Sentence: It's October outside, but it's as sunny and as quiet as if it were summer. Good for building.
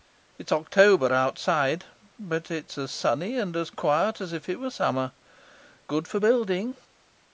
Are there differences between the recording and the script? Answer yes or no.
no